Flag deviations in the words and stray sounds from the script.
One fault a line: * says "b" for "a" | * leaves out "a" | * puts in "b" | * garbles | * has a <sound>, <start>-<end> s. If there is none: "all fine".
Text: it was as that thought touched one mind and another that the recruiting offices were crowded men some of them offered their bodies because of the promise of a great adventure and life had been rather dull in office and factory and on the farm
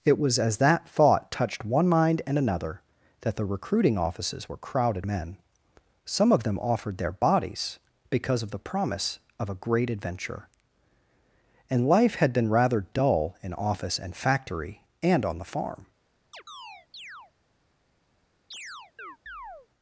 * has a chirp, 16.3-17.3 s
* has a chirp, 18.5-19.7 s